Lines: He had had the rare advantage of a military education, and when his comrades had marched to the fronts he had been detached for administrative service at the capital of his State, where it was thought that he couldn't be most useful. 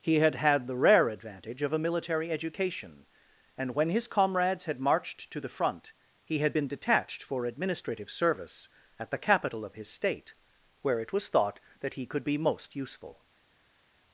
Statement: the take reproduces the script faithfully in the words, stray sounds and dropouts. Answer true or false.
false